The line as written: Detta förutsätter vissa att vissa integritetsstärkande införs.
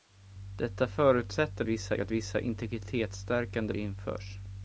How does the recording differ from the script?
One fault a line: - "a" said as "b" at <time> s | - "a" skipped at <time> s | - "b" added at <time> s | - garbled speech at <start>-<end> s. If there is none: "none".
none